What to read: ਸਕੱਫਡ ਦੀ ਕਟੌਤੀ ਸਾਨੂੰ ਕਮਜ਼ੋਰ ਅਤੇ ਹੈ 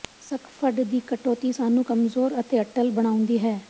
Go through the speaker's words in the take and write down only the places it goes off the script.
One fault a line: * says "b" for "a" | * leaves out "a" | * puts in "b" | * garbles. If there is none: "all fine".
* puts in "ਅਟੱਲ ਬਣਾਉਂਦੀ"